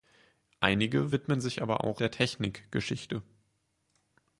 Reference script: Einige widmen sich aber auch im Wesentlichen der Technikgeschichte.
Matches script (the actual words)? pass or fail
fail